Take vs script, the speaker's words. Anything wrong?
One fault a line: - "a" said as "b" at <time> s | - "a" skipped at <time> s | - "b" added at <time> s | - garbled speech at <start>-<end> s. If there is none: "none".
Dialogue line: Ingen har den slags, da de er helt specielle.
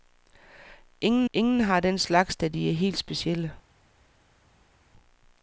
- "ingen" added at 1.3 s